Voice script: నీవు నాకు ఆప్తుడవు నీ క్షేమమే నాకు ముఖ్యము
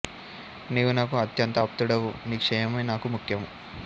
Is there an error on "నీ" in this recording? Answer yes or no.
no